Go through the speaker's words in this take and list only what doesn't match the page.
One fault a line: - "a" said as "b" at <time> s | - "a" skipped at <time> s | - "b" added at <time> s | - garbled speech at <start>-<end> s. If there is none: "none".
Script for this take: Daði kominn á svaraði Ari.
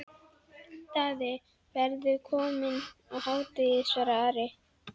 - "verður" added at 1.8 s
- "hádegi" added at 3.3 s